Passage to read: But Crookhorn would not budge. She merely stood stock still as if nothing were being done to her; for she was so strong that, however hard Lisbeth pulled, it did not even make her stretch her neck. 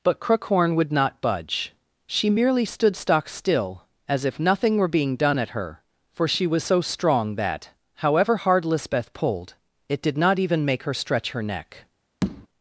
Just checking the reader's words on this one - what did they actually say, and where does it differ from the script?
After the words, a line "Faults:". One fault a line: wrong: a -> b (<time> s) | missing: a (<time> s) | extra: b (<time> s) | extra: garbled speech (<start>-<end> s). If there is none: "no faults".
But Crookhorn would not budge. She merely stood stock still as if nothing were being done at her; for she was so strong that, however hard Lisbeth pulled, it did not even make her stretch her neck.
Faults:
wrong: to -> at (5.4 s)